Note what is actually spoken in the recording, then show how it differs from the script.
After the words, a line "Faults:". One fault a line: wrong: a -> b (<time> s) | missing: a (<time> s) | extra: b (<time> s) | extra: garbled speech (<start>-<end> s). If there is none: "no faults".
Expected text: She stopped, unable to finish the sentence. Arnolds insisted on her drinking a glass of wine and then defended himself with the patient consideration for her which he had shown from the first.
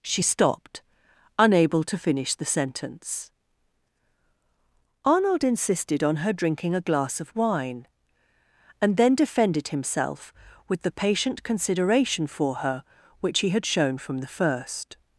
She stopped, unable to finish the sentence. Arnold insisted on her drinking a glass of wine and then defended himself with the patient consideration for her which he had shown from the first.
Faults:
wrong: Arnolds -> Arnold (5.0 s)